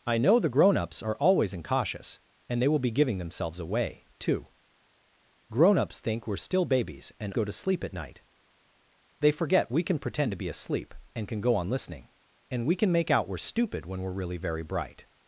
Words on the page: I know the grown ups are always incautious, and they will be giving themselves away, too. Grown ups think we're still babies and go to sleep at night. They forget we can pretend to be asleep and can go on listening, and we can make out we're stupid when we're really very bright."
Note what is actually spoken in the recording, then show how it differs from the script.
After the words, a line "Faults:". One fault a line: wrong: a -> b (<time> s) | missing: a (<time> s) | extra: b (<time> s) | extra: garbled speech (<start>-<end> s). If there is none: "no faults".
I know the grown ups are always incautious, and they will be giving themselves away, too. Grown ups think we're still babies and go to sleep at night. They forget we can pretend to be asleep and can go on listening, and we can make out we're stupid when we're really very bright."
Faults:
no faults